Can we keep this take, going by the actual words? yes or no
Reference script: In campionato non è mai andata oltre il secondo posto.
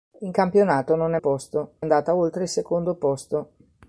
no